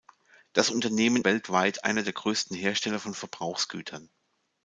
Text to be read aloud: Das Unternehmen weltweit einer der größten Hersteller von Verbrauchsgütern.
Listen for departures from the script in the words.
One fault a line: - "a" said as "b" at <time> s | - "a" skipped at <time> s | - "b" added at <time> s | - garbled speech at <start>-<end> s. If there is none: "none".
none